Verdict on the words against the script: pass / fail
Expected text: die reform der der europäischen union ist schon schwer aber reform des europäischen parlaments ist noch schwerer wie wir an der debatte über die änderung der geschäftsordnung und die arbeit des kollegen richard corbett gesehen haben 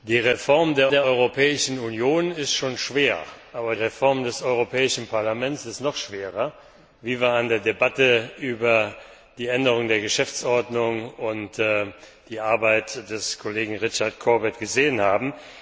pass